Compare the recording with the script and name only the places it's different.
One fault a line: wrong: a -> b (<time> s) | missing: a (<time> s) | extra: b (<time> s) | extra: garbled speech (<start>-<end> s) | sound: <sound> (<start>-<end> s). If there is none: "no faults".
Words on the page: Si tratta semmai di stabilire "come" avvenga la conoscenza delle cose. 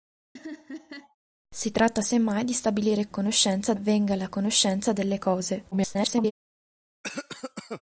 sound: laugh (0.4-1.2 s)
wrong: come -> conoscenza (3.1 s)
extra: garbled speech (5.7-6.3 s)
sound: cough (7.0-7.8 s)